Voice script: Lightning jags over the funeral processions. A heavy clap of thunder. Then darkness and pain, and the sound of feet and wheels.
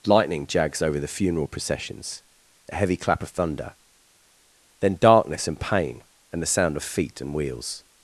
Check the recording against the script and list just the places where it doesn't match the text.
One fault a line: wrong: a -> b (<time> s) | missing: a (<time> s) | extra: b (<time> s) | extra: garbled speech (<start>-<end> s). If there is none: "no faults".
no faults